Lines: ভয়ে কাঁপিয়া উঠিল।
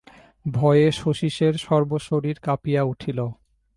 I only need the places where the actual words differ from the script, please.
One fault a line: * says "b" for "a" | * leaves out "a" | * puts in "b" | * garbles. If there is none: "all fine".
* puts in "শচীশের সর্বশরীর"